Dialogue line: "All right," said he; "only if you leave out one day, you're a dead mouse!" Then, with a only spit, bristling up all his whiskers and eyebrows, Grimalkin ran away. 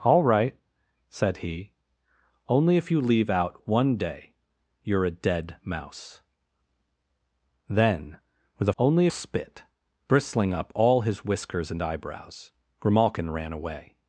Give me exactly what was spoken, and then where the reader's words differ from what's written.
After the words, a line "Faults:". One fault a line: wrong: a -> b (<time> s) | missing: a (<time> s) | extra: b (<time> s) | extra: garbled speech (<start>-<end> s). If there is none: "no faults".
"All right," said he; "only if you leave out one day, you're a dead mouse!" Then, with a only spit, bristling up all his whiskers and eyebrows, Grimalkin ran away.
Faults:
no faults